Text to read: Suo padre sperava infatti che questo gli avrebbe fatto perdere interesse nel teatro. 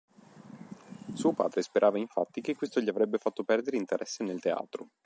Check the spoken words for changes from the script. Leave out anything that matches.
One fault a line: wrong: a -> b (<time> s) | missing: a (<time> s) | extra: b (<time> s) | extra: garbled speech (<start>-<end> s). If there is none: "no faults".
no faults